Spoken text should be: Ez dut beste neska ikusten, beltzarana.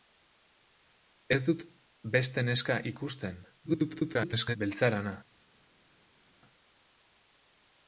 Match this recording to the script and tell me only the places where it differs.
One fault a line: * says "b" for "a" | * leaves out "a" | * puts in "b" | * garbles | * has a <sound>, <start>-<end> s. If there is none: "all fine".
* garbles